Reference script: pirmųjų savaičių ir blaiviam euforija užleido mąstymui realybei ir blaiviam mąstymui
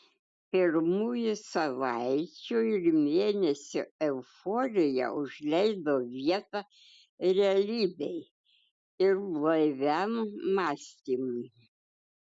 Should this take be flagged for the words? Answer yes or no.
yes